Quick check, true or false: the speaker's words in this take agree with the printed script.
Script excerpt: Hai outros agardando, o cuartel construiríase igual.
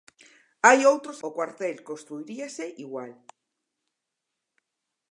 false